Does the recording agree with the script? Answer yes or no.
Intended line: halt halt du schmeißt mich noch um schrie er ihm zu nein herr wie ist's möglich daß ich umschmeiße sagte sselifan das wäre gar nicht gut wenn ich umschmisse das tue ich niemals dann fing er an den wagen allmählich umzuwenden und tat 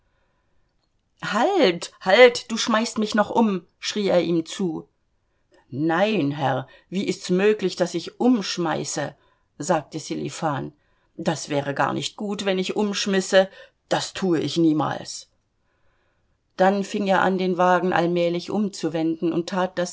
yes